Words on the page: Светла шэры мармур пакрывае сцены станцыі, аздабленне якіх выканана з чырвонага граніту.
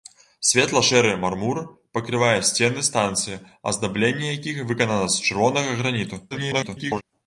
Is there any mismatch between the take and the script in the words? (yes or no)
yes